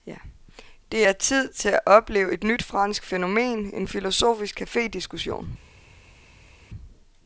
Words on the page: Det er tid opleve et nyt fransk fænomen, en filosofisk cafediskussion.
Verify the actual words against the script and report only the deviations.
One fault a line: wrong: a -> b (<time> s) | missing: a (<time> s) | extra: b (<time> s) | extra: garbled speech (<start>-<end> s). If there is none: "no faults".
extra: til at (1.5 s)